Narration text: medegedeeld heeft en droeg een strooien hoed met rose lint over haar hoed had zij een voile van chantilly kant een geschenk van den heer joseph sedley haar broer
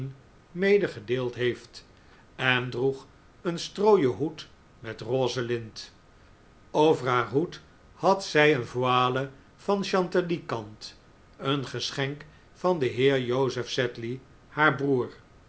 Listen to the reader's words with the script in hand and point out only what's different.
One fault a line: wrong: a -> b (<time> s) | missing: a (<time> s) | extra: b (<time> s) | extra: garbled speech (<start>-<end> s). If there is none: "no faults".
no faults